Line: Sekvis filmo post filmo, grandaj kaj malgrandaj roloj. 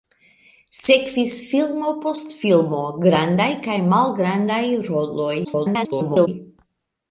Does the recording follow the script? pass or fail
fail